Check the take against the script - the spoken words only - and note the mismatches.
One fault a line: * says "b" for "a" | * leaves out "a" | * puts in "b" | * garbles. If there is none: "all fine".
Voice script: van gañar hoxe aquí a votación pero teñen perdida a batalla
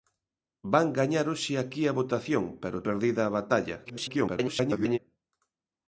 * leaves out "teñen"
* garbles